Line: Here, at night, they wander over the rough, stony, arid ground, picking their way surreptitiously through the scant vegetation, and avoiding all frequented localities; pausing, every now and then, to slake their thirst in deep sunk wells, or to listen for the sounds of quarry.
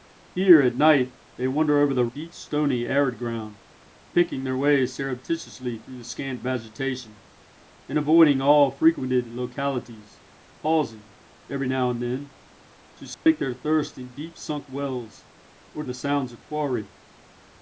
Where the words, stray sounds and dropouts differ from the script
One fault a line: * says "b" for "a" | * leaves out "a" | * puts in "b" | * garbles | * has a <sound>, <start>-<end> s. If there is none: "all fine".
* says "deep" for "rough"
* has a dropout, 13.1-13.3 s
* leaves out "to listen for"